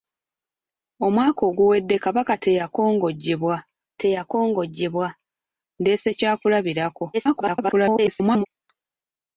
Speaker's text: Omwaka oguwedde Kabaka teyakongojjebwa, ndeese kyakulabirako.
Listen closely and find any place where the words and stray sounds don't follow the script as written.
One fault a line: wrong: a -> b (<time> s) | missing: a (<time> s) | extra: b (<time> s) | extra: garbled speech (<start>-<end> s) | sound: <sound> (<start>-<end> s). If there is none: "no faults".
extra: teyakongojjebwa (4.0 s)
extra: garbled speech (7.1-8.5 s)